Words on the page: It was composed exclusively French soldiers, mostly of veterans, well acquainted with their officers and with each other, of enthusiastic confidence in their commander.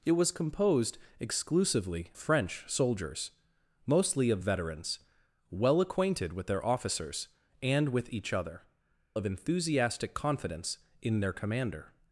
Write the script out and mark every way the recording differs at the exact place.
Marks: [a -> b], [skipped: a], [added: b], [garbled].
It was composed exclusively French soldiers, mostly of veterans, well acquainted with their officers and with each other, of enthusiastic confidence in their commander.